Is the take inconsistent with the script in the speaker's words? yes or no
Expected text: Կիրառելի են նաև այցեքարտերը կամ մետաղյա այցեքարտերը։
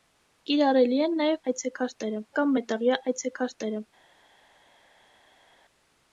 no